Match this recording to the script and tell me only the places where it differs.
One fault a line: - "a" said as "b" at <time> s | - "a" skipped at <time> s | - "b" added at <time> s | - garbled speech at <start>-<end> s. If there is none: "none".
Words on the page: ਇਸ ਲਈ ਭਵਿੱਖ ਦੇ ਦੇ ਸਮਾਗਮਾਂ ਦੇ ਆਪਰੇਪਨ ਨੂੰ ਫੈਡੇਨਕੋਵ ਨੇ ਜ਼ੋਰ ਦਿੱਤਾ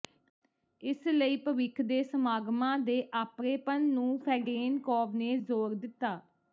- "ਦੇ" skipped at 2.0 s